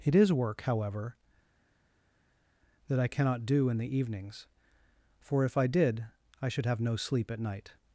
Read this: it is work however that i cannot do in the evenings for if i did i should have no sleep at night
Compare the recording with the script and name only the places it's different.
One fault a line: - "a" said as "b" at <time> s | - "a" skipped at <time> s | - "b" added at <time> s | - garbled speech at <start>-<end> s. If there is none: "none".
none